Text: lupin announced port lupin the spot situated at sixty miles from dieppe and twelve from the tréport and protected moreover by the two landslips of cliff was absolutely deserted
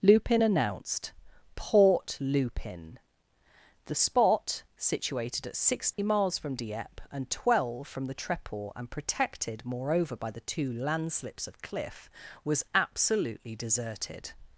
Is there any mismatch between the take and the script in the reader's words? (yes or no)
no